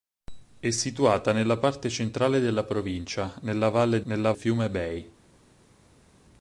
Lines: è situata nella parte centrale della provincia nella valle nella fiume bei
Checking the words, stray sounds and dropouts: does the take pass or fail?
pass